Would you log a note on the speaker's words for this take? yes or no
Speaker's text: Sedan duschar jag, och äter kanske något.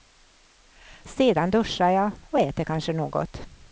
no